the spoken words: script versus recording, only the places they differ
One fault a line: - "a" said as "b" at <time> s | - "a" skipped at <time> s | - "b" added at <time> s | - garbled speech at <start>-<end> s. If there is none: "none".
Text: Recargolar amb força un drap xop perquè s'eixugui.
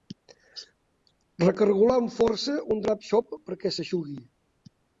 none